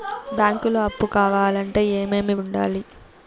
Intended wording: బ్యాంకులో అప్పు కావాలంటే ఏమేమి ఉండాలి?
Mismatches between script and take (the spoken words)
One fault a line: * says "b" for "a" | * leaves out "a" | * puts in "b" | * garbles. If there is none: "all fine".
all fine